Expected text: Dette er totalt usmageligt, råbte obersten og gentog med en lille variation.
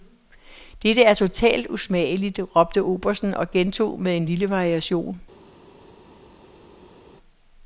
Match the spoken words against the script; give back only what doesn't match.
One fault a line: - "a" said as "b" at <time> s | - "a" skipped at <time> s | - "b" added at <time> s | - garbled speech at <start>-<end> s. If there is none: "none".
none